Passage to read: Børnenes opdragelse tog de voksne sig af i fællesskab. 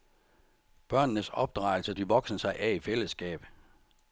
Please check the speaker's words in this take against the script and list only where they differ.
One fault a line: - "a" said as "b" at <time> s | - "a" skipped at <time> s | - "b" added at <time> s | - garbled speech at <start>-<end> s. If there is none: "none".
- "tog" skipped at 1.9 s